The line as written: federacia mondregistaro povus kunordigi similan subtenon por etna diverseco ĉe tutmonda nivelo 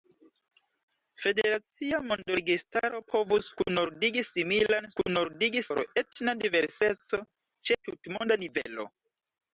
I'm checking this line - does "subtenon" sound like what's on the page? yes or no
no